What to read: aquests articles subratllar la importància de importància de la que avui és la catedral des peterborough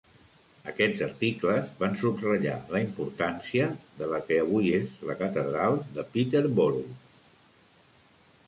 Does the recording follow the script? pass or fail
fail